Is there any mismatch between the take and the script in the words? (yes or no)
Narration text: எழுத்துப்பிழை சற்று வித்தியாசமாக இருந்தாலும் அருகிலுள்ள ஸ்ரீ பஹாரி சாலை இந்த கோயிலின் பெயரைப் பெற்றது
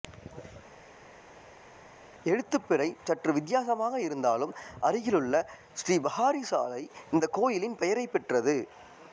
no